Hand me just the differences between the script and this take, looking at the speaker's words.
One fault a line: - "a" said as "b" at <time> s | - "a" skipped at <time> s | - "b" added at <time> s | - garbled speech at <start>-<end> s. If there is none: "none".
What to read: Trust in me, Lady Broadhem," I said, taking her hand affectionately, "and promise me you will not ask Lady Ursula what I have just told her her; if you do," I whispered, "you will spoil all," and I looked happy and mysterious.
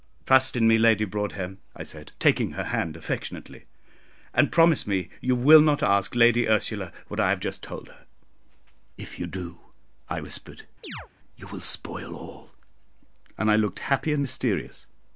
- "her" skipped at 8.1 s